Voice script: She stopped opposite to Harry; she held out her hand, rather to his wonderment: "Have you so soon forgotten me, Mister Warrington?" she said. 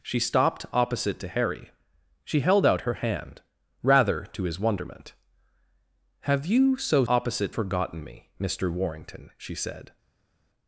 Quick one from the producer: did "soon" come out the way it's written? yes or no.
no